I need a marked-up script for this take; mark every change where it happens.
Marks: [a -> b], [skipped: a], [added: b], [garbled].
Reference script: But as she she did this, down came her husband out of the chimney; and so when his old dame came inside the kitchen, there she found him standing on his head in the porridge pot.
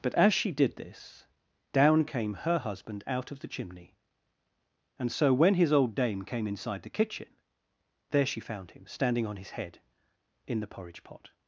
But as she [skipped: she] did this, down came her husband out of the chimney; and so when his old dame came inside the kitchen, there she found him standing on his head in the porridge pot.